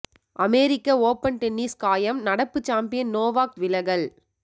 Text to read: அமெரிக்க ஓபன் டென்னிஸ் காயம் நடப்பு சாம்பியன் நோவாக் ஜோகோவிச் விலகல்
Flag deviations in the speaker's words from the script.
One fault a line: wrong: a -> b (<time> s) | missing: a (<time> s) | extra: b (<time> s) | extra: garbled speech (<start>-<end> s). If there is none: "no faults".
missing: ஜோகோவிச் (3.6 s)